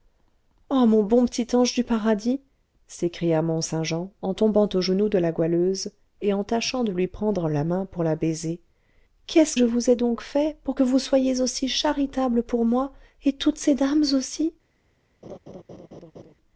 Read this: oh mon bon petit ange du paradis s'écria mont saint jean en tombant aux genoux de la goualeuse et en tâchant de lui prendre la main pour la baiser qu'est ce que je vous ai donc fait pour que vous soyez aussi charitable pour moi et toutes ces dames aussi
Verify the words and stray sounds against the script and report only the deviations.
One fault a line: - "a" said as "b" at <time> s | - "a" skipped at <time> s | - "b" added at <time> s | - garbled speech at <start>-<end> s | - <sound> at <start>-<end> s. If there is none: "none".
- "que" skipped at 9.6 s
- laugh at 15.2-16.3 s